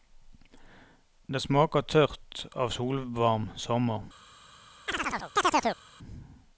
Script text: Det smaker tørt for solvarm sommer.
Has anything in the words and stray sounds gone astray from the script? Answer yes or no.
yes